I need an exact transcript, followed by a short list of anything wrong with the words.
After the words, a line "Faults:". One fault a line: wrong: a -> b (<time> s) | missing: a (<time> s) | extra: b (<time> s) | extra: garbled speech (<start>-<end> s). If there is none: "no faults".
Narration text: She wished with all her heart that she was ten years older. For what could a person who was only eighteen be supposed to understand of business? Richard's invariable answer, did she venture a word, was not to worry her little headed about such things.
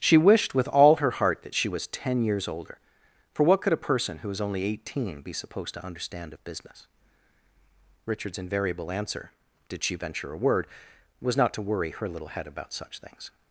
She wished with all her heart that she was ten years older. For what could a person who was only eighteen be supposed to understand of business? Richard's invariable answer, did she venture a word, was not to worry her little head about such things.
Faults:
wrong: headed -> head (12.3 s)